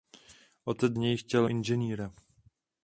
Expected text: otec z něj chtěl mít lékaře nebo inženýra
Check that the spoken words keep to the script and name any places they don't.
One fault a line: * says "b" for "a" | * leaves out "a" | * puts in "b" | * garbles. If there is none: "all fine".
* leaves out "z"
* leaves out "mít lékaře nebo"